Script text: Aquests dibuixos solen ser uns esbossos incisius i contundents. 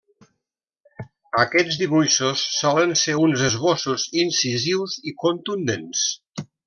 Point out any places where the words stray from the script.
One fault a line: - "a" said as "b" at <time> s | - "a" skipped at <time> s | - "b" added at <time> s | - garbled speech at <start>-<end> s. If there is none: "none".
none